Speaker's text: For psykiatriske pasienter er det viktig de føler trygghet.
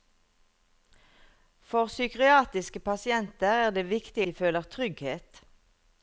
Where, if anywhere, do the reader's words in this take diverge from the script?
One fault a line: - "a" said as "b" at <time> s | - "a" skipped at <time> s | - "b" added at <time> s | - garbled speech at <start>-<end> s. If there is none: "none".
none